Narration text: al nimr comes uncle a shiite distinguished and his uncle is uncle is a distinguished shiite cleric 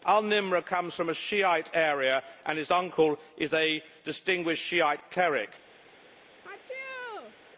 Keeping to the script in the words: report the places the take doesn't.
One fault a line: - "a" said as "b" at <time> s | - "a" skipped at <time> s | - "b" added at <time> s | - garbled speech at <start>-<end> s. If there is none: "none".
- "uncle" said as "from" at 0.9 s
- "distinguished" said as "area" at 1.7 s
- "uncle is" skipped at 3.5 s